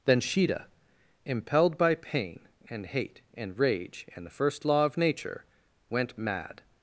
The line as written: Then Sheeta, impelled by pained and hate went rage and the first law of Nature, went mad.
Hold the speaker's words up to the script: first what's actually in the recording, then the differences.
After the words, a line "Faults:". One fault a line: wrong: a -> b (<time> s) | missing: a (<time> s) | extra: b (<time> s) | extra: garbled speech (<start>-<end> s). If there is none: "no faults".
Then Sheeta, impelled by pain and hate and rage and the first law of Nature, went mad.
Faults:
wrong: pained -> pain (1.9 s)
wrong: went -> and (3.4 s)